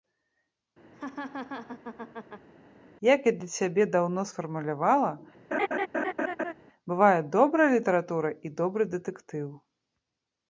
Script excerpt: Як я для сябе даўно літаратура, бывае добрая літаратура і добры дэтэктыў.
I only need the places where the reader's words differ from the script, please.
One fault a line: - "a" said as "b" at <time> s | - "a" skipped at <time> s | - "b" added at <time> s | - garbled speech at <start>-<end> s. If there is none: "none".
- "літаратура" said as "сфармулявала" at 4.3 s